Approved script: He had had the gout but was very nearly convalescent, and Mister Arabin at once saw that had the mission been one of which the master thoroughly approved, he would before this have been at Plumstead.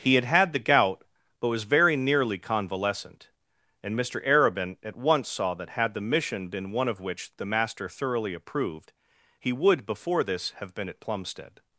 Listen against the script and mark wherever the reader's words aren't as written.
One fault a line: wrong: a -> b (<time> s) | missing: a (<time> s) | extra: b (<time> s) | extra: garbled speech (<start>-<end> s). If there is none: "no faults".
no faults